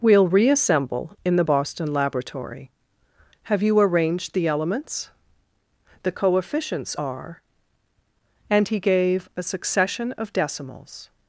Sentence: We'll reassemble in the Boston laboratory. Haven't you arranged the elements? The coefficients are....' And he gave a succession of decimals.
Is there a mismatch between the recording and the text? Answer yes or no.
yes